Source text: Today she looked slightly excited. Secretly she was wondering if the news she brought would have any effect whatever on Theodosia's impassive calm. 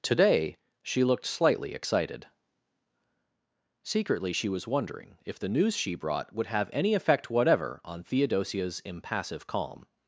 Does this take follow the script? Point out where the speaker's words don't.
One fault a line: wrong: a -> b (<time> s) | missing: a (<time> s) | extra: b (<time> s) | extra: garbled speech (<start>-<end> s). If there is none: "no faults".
no faults